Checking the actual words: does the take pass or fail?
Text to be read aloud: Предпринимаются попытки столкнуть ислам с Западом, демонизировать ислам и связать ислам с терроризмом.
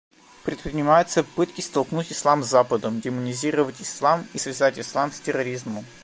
pass